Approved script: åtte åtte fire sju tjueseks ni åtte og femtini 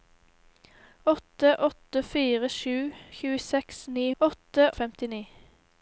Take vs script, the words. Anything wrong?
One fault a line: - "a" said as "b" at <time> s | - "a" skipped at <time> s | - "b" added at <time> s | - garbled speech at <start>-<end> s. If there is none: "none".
none